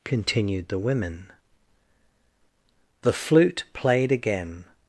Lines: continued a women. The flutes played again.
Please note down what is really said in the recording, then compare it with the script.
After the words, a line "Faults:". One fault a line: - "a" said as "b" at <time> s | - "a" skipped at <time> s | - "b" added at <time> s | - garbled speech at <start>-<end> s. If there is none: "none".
continued the women. The flute played again.
Faults:
- "a" said as "the" at 0.7 s
- "flutes" said as "flute" at 3.1 s